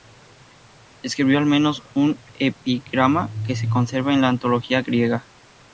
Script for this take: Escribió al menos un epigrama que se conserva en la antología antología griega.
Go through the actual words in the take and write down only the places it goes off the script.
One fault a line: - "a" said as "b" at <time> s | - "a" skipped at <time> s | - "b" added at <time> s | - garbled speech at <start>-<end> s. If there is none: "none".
- "antología" skipped at 4.8 s